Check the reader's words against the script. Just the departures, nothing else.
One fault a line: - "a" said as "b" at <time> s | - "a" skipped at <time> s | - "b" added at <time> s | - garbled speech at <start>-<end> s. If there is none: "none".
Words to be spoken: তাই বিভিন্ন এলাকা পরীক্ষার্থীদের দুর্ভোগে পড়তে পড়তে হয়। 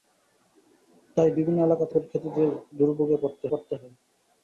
none